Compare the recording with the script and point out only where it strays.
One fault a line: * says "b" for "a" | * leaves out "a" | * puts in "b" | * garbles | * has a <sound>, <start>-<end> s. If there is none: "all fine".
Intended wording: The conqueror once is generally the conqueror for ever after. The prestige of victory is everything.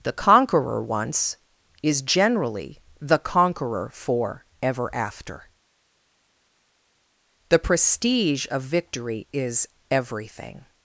all fine